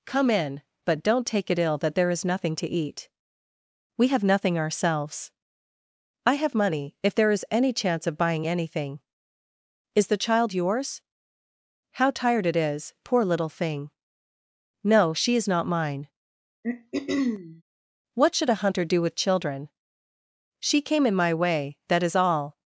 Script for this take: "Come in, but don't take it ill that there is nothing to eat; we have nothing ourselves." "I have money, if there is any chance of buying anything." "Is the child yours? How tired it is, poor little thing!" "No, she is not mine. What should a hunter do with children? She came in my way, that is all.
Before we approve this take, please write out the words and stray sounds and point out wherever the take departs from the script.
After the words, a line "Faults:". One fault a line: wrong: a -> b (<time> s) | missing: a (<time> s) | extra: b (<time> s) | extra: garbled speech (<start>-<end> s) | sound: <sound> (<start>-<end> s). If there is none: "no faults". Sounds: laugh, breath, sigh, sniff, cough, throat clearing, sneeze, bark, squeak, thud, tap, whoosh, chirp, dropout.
"Come in, but don't take it ill that there is nothing to eat; we have nothing ourselves." "I have money, if there is any chance of buying anything." "Is the child yours? How tired it is, poor little thing!" "No, she is not mine. What should a hunter do with children? She came in my way, that is all.
Faults:
sound: throat clearing (16.6-17.6 s)